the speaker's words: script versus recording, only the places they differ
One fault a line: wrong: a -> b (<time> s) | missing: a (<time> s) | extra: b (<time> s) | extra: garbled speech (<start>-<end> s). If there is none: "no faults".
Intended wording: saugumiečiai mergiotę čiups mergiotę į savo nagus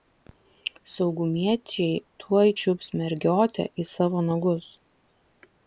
wrong: mergiotę -> tuoj (2.2 s)